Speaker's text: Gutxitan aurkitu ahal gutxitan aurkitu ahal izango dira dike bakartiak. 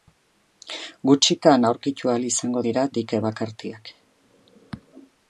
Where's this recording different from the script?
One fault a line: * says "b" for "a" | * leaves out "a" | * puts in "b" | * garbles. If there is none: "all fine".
* leaves out "gutxitan aurkitu ahal"